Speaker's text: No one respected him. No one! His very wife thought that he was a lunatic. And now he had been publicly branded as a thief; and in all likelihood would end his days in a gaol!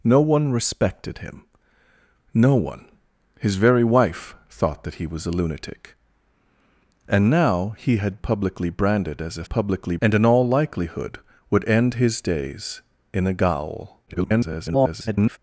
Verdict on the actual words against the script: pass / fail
fail